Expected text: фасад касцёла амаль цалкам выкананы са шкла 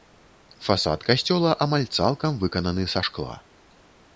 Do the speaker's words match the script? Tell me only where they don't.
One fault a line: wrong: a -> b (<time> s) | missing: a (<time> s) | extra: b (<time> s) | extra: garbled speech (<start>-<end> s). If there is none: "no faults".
no faults